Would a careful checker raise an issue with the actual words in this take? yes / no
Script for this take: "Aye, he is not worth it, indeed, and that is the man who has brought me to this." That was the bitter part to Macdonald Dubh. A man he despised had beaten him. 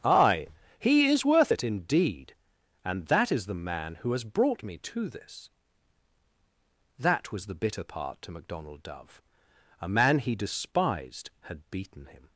yes